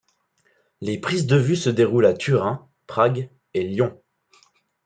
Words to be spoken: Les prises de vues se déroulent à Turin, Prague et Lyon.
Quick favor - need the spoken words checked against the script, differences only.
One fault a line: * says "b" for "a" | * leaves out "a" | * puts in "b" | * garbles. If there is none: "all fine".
all fine